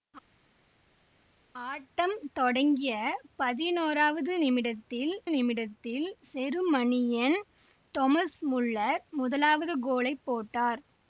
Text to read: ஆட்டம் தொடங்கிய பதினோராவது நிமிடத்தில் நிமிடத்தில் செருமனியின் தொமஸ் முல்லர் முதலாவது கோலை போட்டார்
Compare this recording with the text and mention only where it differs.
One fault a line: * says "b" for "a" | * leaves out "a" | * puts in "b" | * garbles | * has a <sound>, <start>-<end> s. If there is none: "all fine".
all fine